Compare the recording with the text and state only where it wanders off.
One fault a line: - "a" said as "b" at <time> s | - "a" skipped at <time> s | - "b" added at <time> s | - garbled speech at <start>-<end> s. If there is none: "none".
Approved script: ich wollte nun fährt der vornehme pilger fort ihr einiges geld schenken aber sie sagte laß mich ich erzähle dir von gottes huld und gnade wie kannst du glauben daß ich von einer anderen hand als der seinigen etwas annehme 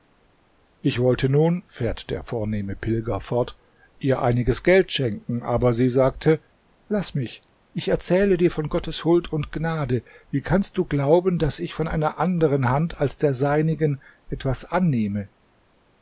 none